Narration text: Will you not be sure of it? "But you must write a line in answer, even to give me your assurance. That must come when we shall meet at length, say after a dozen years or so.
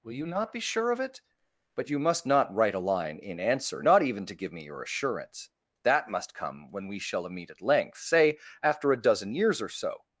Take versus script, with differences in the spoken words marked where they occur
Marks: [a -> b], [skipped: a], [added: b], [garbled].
Will you not be sure of it? "But you must [added: not] write a line in answer, [added: not] even to give me your assurance. That must come when we shall meet at length, say after a dozen years or so.